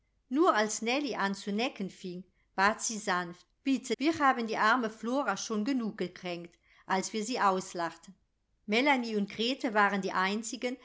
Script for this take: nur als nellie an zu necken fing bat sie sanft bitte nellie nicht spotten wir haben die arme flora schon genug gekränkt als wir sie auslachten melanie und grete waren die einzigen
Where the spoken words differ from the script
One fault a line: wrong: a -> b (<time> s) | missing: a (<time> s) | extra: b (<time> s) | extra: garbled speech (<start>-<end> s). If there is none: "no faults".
missing: nellie nicht spotten (4.0 s)